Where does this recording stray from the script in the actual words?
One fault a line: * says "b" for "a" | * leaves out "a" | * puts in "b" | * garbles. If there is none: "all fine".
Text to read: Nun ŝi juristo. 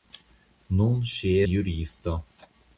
all fine